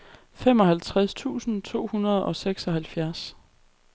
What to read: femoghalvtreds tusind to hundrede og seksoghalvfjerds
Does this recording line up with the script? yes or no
yes